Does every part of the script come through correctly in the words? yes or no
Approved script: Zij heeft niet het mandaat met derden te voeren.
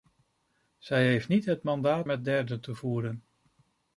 yes